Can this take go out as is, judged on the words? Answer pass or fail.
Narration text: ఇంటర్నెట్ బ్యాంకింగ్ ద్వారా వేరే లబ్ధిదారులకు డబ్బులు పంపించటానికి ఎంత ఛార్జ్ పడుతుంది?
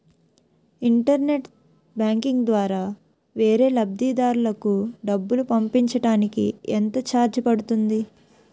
pass